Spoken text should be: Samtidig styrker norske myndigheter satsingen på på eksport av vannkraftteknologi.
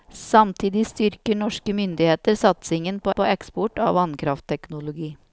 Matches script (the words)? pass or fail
pass